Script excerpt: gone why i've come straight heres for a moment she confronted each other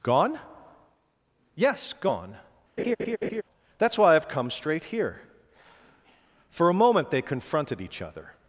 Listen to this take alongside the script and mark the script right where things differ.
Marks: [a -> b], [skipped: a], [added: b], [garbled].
gone [added: yes gone that's] why i've come straight [heres -> here] for a moment [she -> they] confronted each other